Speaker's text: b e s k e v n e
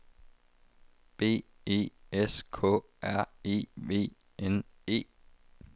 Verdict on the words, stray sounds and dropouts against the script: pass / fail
fail